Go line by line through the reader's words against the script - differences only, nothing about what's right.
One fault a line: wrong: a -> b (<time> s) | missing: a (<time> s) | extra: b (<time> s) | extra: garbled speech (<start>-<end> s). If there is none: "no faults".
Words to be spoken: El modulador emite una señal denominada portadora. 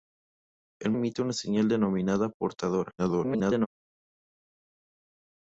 missing: modulador (0.9 s)
extra: garbled speech (3.0-3.7 s)